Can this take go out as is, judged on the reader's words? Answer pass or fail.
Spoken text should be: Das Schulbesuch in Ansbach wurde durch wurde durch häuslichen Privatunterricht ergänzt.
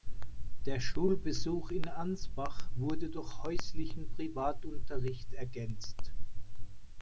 fail